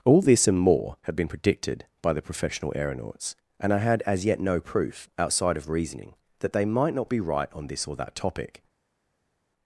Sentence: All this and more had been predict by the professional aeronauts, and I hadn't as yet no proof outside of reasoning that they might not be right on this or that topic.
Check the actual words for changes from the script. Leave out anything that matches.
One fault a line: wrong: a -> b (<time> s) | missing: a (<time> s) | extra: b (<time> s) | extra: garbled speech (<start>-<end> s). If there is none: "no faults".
wrong: predict -> predicted (1.2 s)
wrong: hadn't -> had (3.8 s)